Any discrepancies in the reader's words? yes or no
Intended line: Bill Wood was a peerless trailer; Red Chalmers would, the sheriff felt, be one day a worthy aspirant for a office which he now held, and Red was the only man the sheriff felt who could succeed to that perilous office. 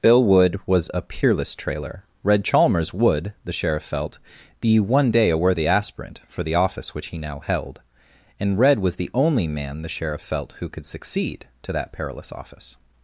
yes